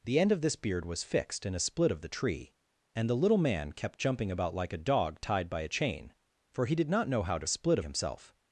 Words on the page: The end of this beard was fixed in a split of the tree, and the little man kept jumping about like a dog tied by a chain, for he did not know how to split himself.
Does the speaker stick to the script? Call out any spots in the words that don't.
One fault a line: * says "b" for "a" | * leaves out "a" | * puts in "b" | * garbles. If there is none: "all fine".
all fine